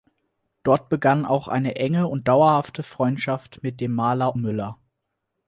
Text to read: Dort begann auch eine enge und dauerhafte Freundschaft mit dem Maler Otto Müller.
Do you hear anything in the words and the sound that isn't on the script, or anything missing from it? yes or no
yes